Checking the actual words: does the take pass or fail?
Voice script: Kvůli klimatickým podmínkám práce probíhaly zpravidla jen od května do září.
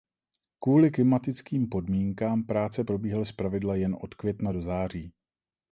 pass